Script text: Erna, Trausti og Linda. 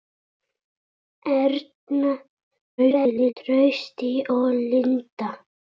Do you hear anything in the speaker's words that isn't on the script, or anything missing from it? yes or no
yes